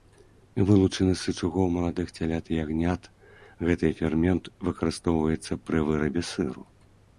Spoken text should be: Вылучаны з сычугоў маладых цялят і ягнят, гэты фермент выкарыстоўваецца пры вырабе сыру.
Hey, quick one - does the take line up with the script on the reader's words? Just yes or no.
yes